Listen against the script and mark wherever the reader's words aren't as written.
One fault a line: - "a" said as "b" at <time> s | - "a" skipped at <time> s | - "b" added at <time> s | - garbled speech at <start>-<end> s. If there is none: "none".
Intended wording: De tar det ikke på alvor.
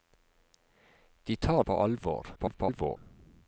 - "det ikke" skipped at 1.6 s
- garbled speech at 2.4-3.0 s